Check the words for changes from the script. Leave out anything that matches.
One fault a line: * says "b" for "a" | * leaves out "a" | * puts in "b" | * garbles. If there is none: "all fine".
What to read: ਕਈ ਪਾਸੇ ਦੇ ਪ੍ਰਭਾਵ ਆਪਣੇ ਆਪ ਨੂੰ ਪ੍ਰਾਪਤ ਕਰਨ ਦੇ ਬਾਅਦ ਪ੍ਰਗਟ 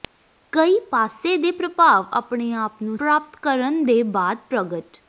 all fine